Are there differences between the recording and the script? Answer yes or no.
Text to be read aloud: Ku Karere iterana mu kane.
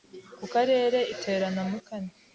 no